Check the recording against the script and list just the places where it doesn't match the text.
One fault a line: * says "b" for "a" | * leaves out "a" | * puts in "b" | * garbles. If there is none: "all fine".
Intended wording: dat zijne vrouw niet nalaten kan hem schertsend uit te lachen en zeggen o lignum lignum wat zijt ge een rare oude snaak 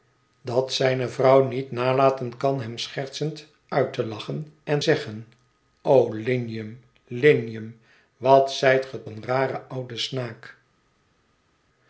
all fine